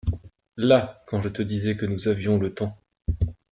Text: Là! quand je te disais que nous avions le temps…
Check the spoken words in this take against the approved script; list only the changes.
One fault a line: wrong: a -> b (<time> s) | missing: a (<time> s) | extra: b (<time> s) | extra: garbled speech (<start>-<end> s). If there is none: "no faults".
no faults